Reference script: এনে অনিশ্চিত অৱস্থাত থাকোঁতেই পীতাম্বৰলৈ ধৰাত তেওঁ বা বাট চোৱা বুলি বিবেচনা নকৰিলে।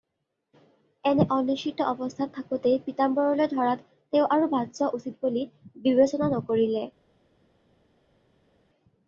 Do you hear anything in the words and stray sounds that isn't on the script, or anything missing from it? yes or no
yes